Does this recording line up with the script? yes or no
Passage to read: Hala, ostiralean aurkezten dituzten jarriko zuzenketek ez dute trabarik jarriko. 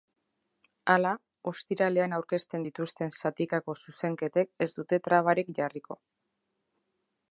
no